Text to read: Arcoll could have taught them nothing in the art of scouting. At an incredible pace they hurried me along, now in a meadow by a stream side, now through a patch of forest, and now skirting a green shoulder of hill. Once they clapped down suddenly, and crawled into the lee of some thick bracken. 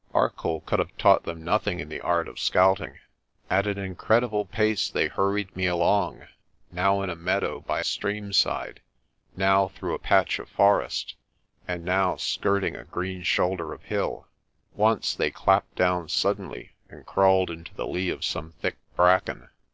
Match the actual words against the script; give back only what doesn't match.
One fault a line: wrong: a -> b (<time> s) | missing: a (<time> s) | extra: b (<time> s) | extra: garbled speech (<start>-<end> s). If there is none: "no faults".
missing: a (7.8 s)